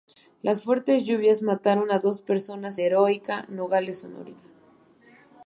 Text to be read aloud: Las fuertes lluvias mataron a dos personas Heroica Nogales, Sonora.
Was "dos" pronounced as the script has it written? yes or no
yes